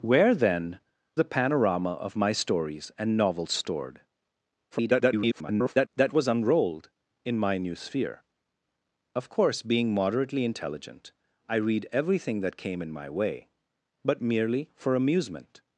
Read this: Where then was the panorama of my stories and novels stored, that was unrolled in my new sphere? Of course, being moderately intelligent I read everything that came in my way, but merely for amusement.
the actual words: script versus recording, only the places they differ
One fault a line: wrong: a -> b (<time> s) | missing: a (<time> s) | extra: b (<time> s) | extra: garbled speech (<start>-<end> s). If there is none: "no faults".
missing: was (0.8 s)
extra: garbled speech (4.7-5.9 s)